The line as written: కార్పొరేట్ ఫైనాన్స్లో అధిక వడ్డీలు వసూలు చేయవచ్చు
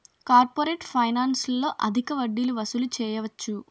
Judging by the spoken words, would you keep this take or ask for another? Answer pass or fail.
pass